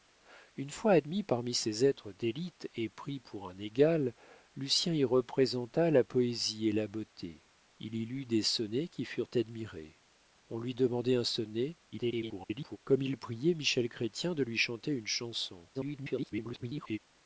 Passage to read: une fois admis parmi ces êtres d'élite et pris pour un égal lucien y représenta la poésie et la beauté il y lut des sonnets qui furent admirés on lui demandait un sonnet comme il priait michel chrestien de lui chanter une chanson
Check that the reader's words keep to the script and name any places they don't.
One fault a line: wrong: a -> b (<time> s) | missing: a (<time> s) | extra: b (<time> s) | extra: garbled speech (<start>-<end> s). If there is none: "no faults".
extra: garbled speech (11.9-12.8 s)
extra: garbled speech (15.7-17.0 s)